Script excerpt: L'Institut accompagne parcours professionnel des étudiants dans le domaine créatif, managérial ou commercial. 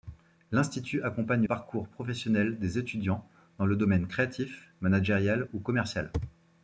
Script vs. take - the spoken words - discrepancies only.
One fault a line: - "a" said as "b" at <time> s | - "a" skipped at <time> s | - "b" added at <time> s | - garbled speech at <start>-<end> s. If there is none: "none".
none